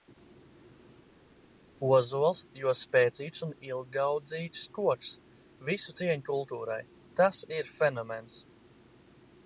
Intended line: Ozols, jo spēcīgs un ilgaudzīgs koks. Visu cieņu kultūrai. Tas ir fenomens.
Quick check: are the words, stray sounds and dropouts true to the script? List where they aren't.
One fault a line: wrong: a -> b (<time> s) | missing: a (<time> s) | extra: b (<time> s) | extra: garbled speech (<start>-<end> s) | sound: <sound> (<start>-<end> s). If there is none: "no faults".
no faults